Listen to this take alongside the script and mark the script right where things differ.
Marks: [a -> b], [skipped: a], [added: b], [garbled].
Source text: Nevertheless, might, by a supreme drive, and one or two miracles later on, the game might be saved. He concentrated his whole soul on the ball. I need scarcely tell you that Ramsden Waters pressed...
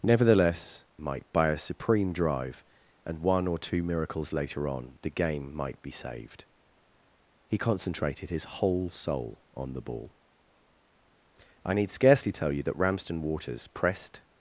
Nevertheless, might, by a supreme drive, and one or two miracles later on, the game might be saved. He concentrated his whole soul on the ball. I need scarcely tell you that Ramsden Waters pressed...